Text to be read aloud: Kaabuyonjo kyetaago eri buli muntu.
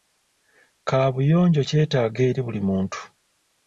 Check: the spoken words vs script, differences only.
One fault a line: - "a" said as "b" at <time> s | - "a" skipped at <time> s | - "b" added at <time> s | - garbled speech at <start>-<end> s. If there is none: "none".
none